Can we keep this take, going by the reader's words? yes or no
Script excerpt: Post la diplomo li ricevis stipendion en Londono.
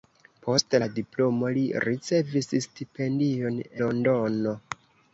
no